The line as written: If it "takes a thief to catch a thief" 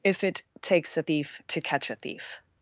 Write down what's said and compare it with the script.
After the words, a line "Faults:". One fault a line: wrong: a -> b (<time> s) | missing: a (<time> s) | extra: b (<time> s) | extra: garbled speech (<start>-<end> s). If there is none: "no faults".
If it "takes a thief to catch a thief"
Faults:
no faults